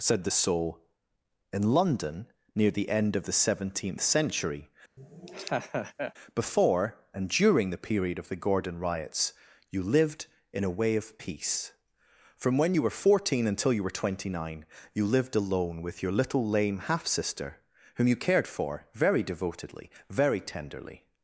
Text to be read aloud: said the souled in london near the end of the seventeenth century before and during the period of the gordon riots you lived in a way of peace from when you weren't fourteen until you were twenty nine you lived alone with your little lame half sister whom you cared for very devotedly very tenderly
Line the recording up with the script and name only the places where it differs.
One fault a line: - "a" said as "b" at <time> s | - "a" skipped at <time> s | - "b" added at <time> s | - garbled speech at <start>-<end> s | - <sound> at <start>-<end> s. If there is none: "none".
- "souled" said as "soul" at 0.3 s
- laugh at 5.0-6.1 s
- "weren't" said as "were" at 12.8 s